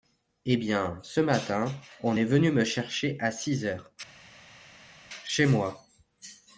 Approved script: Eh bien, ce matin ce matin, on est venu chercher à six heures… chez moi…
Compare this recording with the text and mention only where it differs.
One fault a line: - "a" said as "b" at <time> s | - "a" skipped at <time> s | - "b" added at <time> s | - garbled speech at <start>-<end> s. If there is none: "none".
- "ce matin" skipped at 1.7 s
- "me" added at 2.5 s